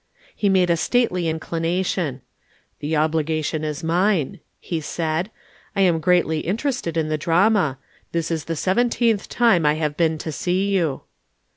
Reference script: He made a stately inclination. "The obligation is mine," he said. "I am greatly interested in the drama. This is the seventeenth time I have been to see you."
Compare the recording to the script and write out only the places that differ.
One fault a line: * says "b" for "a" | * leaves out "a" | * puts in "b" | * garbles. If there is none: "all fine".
all fine